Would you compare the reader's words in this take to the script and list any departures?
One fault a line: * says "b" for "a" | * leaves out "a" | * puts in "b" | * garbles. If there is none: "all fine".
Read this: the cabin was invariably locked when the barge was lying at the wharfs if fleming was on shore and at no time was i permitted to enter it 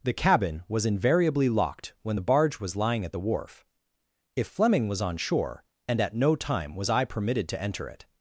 * says "wharf" for "wharfs"